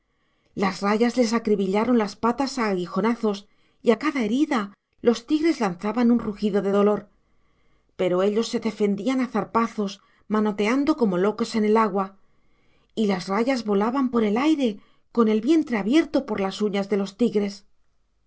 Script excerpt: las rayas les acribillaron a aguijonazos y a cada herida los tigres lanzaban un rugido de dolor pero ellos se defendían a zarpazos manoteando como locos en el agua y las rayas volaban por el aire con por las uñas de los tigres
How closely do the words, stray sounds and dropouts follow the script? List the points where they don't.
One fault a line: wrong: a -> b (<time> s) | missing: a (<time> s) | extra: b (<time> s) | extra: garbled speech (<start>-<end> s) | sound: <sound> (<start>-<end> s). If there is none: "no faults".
extra: las patas (2.0 s)
extra: el vientre abierto (15.3 s)